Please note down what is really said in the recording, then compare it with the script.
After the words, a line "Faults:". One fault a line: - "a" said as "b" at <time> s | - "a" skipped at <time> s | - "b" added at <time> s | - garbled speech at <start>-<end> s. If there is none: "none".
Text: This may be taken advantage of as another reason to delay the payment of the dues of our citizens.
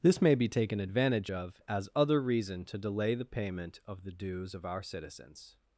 This may be taken advantage of as other reason to delay the payment of the dues of our citizens.
Faults:
- "another" said as "other" at 1.9 s